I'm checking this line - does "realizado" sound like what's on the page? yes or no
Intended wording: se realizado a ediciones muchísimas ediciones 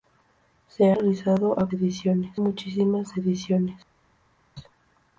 yes